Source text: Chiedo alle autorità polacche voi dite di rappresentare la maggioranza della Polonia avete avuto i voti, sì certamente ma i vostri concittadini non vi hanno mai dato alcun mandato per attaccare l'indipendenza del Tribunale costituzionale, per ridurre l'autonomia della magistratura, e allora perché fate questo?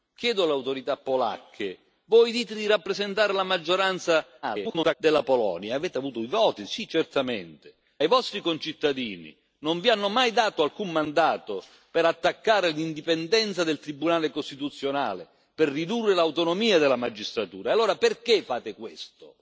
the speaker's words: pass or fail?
fail